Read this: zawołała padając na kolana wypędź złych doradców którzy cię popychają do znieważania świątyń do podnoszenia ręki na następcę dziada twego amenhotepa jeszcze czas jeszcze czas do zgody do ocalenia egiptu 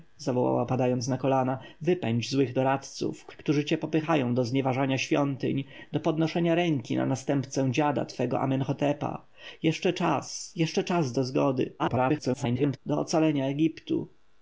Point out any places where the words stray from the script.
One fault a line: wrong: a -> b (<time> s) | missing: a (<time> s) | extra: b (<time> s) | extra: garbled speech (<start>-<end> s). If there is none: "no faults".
extra: garbled speech (11.8-12.8 s)